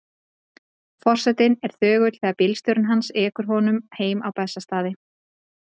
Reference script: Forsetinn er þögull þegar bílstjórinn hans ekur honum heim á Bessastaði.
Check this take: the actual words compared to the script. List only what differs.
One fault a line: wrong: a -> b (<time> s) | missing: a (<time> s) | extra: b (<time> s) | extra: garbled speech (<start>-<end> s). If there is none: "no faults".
no faults